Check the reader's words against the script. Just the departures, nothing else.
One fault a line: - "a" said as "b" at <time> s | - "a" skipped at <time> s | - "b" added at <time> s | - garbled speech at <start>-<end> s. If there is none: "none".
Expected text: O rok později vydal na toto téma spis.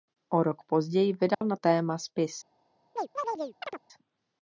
- "toto" skipped at 1.6 s